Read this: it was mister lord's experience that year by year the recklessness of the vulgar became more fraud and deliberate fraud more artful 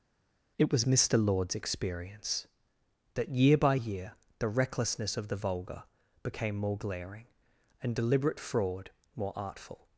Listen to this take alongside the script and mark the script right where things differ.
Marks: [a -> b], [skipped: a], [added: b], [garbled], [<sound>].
it was mister lord's experience that year by year the recklessness of the vulgar became more [fraud -> glaring] and deliberate fraud more artful